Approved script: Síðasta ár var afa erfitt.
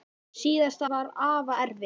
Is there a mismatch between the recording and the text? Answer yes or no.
yes